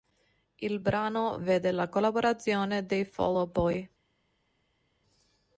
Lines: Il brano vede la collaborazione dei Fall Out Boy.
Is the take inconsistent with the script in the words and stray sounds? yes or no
no